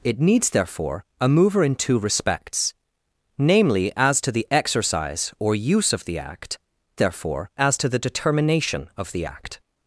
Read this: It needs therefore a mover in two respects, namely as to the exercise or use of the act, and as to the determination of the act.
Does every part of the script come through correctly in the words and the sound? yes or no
no